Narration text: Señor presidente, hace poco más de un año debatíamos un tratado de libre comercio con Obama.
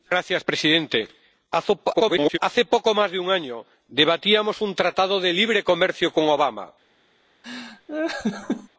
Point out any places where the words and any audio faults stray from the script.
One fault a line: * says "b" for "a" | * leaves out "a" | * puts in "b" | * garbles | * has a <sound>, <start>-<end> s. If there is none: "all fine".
* garbles
* has a laugh, 7.4-8.7 s